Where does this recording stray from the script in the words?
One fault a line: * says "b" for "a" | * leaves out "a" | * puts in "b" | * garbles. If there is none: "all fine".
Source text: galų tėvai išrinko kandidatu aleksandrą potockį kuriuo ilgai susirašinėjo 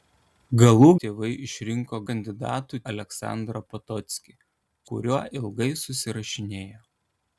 all fine